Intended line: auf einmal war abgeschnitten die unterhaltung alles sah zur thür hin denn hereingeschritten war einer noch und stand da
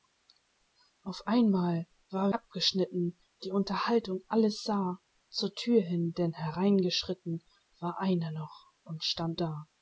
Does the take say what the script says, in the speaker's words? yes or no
yes